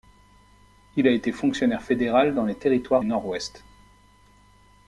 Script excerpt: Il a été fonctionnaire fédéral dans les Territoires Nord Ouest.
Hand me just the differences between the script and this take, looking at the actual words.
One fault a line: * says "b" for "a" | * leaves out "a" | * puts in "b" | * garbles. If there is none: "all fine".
all fine